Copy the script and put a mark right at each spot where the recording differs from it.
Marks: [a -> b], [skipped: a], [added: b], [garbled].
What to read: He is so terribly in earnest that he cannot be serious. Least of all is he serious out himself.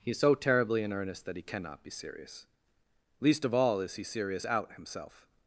He is so terribly in earnest that he cannot be serious. Least of all is he serious out himself.